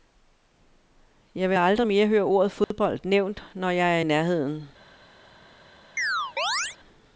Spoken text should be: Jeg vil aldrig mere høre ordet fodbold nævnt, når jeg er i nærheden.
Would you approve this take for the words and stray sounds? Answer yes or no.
no